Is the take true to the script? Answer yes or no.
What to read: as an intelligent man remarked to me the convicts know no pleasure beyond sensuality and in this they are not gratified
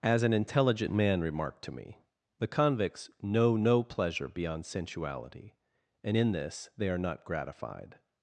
yes